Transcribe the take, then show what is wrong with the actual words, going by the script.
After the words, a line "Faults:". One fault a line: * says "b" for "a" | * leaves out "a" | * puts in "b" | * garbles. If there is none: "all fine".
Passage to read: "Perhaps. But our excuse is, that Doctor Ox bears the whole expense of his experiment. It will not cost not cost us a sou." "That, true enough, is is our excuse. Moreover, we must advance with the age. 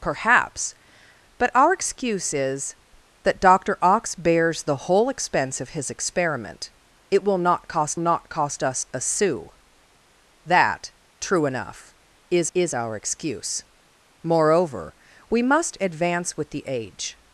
"Perhaps. But our excuse is, that Doctor Ox bears the whole expense of his experiment. It will not cost not cost us a sou." "That, true enough, is is our excuse. Moreover, we must advance with the age.
Faults:
all fine